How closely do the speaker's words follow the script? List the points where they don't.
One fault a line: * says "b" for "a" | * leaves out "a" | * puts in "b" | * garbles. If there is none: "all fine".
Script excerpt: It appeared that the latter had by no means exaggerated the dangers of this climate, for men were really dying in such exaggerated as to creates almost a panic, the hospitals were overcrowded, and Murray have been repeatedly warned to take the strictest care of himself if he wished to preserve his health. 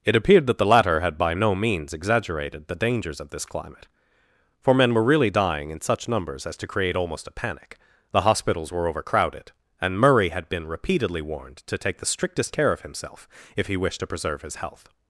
* says "numbers" for "exaggerated"
* says "create" for "creates"
* says "had" for "have"